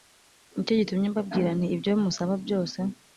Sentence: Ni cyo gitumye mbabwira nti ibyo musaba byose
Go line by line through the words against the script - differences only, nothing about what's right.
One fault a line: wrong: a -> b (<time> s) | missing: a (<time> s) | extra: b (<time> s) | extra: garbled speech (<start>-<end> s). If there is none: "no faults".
no faults